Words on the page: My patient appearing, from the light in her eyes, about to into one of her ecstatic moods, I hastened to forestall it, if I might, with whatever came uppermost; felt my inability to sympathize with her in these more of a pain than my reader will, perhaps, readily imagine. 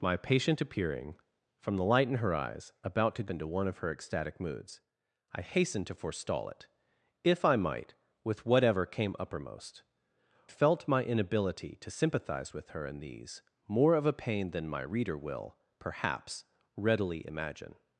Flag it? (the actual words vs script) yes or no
no